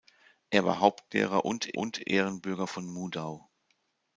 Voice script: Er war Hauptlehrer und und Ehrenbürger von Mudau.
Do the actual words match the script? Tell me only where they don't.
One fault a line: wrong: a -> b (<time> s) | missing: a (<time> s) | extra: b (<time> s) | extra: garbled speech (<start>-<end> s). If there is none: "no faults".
no faults